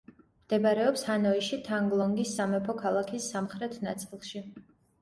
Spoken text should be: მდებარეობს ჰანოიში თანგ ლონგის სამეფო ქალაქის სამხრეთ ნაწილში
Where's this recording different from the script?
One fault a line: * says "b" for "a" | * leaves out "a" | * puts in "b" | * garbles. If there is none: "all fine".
all fine